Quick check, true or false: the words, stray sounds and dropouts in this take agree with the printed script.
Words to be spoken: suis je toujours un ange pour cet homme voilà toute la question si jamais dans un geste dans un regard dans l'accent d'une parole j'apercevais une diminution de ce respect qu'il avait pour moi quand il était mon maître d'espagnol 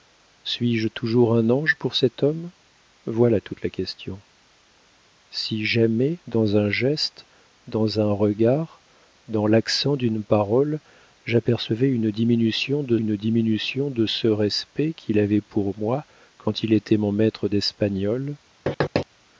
false